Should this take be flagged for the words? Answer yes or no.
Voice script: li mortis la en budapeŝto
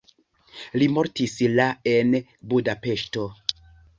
no